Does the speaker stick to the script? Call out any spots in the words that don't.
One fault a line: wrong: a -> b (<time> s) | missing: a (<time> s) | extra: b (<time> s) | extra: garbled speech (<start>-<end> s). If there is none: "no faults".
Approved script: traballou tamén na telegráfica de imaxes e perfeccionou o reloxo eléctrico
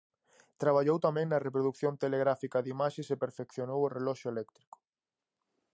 extra: reprodución (1.5 s)